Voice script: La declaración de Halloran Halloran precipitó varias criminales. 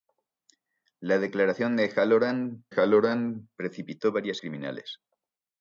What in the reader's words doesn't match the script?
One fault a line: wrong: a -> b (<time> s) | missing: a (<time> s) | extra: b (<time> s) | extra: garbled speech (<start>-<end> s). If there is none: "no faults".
no faults